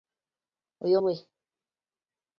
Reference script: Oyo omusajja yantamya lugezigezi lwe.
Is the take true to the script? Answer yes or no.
no